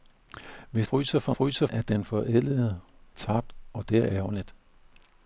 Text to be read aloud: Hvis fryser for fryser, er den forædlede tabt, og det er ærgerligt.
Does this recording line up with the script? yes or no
yes